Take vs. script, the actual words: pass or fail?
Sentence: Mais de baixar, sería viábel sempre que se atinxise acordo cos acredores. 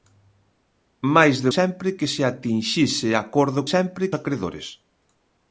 fail